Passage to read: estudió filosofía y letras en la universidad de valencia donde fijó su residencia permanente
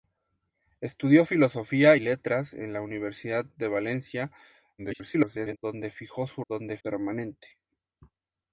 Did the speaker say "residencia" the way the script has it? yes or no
no